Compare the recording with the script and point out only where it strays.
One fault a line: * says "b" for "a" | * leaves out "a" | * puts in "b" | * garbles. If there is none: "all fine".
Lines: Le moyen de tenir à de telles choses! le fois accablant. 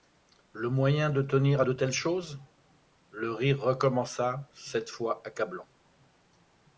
* puts in "rire recommença cette"